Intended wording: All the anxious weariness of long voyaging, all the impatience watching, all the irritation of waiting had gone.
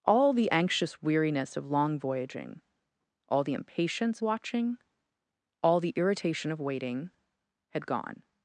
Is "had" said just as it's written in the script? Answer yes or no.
yes